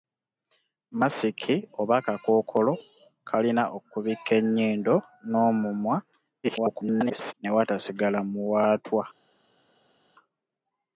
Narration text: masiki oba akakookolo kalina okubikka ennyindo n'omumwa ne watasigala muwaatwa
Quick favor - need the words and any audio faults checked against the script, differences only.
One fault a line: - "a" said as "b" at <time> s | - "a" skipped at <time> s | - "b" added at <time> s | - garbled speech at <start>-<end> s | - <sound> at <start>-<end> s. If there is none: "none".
- garbled speech at 6.4-7.3 s